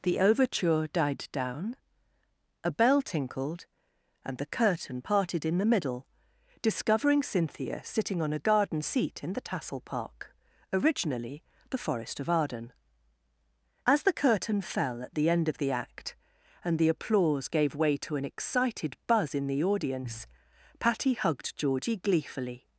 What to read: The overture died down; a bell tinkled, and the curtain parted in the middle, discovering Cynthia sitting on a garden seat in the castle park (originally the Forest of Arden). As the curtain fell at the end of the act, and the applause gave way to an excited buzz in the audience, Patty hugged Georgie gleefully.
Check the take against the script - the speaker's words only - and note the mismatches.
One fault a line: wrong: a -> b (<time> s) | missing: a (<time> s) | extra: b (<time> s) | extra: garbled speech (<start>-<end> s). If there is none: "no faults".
wrong: castle -> tassel (9.4 s)